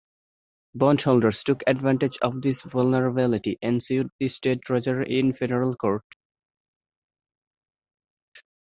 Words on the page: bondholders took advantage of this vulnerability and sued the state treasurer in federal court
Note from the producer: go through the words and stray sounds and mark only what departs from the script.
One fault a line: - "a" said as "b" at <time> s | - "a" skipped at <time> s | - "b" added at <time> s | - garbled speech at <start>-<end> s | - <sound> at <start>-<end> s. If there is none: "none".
none